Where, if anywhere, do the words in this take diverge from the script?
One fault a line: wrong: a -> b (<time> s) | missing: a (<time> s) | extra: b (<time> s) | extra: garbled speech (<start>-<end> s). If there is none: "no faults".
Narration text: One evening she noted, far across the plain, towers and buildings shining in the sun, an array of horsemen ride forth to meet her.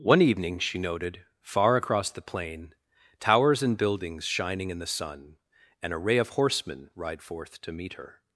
no faults